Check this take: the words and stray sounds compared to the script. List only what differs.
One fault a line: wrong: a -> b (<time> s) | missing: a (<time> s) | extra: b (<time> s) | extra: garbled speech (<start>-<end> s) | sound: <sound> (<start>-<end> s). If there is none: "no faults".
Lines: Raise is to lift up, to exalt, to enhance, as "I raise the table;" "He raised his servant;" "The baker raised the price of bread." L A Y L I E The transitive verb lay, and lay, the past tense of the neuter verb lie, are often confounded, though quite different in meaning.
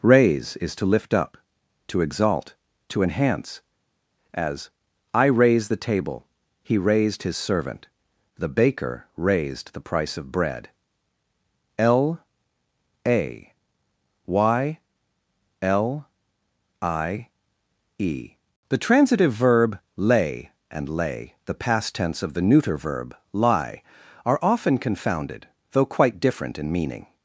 no faults